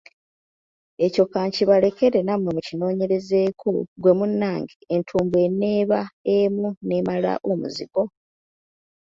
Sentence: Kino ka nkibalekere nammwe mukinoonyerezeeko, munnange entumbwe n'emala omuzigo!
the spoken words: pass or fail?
fail